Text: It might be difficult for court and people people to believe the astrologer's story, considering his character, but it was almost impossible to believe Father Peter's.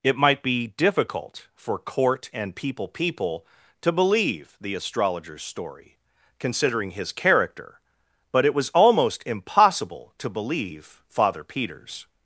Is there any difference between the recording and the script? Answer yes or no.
no